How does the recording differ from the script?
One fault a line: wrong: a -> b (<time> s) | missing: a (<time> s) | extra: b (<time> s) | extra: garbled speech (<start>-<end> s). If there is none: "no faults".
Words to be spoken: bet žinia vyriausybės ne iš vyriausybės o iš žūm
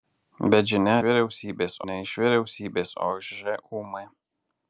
no faults